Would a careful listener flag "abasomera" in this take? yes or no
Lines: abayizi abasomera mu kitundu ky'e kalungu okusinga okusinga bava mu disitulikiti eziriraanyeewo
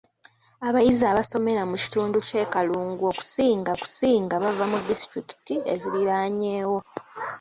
no